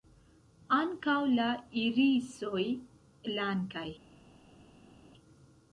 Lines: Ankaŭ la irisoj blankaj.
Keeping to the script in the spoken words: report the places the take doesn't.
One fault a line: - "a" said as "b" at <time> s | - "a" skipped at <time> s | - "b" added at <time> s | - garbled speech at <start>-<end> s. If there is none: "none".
none